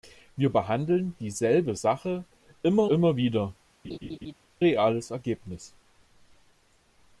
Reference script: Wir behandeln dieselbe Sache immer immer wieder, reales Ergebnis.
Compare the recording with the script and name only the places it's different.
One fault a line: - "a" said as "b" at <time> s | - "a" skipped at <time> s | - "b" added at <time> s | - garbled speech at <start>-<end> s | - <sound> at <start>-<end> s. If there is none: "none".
- laugh at 3.8-4.3 s